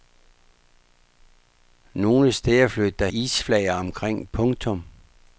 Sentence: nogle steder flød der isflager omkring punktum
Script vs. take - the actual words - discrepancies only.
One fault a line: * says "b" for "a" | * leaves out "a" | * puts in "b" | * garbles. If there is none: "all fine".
all fine